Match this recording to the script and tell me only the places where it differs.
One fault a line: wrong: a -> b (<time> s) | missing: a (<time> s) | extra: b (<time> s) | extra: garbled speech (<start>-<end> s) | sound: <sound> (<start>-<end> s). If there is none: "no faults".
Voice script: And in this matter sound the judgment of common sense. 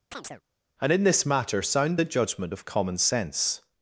sound: chirp (0.1-0.4 s)